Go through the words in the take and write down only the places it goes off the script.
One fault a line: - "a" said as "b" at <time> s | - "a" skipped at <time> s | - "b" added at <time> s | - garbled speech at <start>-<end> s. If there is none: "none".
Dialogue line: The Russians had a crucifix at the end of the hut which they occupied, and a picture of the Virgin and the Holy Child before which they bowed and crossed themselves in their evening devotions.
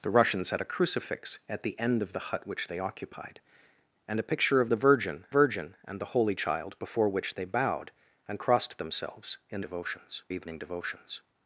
- "Virgin" added at 5.3 s
- "their" said as "devotions" at 9.6 s